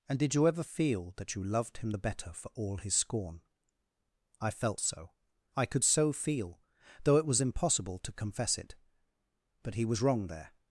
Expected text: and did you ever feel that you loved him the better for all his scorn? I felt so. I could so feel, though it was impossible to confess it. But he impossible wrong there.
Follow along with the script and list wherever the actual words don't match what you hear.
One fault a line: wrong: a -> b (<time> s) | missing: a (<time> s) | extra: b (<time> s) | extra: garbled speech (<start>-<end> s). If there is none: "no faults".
wrong: impossible -> was (9.8 s)